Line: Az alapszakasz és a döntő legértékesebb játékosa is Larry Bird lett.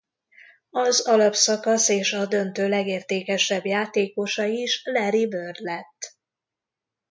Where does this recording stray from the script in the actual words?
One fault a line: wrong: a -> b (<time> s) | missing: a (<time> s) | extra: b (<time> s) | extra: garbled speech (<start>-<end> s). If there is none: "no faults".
no faults